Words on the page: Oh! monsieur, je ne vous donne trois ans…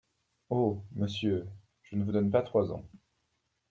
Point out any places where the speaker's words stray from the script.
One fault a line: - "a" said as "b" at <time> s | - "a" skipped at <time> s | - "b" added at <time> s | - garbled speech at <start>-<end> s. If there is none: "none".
- "pas" added at 2.3 s